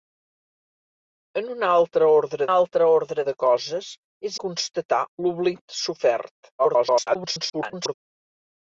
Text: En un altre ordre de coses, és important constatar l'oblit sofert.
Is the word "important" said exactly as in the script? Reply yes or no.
no